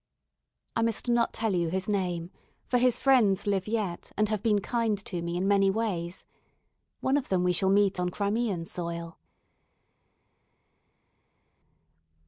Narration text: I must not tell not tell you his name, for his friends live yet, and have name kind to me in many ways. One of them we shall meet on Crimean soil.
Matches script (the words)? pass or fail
fail